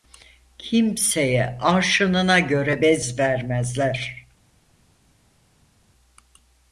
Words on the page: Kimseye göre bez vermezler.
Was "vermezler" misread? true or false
false